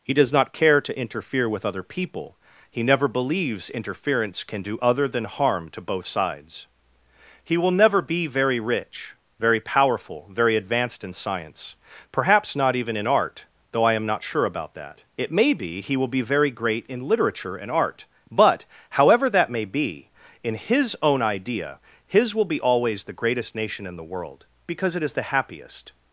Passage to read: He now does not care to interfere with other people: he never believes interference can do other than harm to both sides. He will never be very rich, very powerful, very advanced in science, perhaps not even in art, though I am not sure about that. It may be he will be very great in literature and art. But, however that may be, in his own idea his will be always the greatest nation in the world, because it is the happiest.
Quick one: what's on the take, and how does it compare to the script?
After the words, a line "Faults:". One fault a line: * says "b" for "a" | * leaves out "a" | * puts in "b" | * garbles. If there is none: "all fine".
He does not care to interfere with other people: he never believes interference can do other than harm to both sides. He will never be very rich, very powerful, very advanced in science, perhaps not even in art, though I am not sure about that. It may be he will be very great in literature and art. But, however that may be, in his own idea his will be always the greatest nation in the world, because it is the happiest.
Faults:
* leaves out "now"